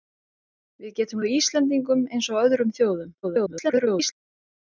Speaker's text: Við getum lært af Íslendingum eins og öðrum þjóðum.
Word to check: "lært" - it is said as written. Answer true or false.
false